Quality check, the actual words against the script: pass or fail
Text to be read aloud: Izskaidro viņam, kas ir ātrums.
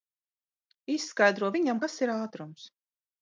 pass